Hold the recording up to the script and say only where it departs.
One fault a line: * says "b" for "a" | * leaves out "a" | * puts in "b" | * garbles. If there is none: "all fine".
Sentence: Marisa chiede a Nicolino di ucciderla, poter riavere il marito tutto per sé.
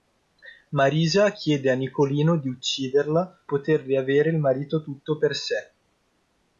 all fine